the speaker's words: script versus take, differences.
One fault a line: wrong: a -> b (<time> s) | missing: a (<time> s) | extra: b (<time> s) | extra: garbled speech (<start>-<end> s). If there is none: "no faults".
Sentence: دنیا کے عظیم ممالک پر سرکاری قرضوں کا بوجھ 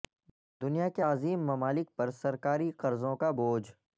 no faults